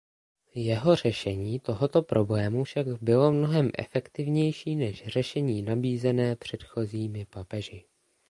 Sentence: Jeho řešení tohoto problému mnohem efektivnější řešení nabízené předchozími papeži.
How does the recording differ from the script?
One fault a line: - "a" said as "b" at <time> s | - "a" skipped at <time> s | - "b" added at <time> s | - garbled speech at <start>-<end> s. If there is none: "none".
- "však bylo" added at 2.6 s
- "než" added at 4.8 s